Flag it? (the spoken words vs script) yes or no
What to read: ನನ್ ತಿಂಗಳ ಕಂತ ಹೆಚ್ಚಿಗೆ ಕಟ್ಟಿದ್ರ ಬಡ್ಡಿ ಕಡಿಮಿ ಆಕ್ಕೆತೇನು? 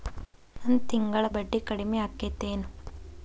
yes